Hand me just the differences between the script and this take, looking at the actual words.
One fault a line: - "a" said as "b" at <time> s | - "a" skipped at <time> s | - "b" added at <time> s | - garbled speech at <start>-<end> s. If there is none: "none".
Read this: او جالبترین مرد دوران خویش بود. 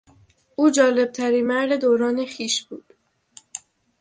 none